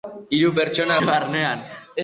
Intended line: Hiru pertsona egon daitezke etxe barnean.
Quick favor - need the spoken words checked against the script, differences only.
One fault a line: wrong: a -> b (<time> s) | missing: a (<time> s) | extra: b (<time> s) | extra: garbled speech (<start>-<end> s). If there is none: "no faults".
missing: egon daitezke etxe (1.0 s)